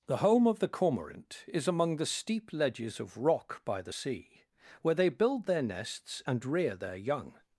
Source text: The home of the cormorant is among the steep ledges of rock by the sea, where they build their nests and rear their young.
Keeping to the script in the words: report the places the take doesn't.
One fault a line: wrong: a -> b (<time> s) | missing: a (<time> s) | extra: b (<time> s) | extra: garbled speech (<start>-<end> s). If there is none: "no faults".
no faults